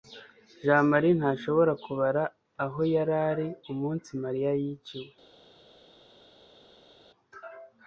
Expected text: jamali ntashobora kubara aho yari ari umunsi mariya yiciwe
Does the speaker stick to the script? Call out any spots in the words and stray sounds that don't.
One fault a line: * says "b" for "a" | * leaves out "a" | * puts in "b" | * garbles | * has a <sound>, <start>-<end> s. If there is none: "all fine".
all fine